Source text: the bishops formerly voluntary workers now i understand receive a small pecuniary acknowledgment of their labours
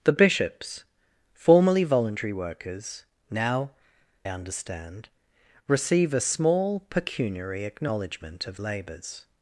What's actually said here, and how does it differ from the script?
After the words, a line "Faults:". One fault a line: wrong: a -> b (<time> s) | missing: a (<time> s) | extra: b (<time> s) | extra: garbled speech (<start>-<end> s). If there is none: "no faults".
the bishops formerly voluntary workers now understand receive a small pecuniary acknowledgment of labours
Faults:
missing: i (3.7 s)
missing: their (8.6 s)